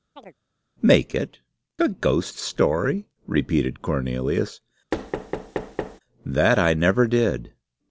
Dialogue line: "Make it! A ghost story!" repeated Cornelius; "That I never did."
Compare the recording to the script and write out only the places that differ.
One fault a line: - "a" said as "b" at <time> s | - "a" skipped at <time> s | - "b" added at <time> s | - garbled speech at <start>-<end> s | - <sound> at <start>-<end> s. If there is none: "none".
- chirp at 0.2-0.4 s
- thud at 4.9-6.0 s